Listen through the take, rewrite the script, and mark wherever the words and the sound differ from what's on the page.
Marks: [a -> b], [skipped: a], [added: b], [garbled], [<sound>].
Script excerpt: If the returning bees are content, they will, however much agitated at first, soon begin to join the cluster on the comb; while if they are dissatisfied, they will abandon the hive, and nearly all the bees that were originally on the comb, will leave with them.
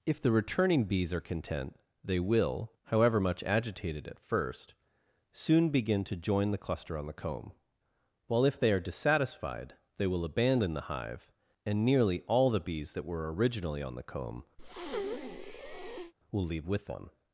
If the returning bees are content, they will, however much agitated at first, soon begin to join the cluster on the comb; while if they are dissatisfied, they will abandon the hive, and nearly all the bees that were originally on the comb, [breath] will leave with them.